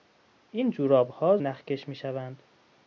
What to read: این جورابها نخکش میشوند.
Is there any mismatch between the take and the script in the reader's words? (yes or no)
no